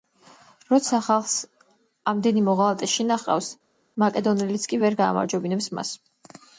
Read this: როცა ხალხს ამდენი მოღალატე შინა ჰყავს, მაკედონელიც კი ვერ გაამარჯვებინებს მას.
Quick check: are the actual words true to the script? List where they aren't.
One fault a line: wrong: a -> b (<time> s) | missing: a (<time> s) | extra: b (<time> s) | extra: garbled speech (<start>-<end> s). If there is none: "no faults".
no faults